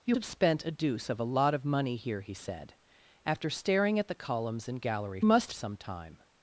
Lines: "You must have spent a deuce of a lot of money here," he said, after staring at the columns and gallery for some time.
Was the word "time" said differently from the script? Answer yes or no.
no